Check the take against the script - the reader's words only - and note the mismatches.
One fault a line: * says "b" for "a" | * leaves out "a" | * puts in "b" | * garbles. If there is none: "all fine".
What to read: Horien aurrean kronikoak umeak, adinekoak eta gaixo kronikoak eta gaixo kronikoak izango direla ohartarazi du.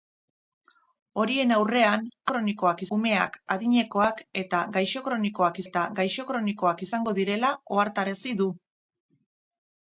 all fine